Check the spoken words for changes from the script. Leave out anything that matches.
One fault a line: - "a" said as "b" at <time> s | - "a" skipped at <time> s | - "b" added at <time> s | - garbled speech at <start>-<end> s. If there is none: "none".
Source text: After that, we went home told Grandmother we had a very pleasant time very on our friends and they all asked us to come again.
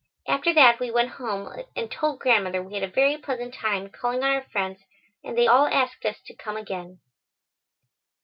- "and" added at 1.8 s
- "very" said as "calling" at 3.9 s